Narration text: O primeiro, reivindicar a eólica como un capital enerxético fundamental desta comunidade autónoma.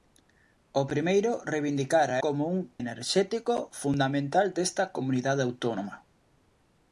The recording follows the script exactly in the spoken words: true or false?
false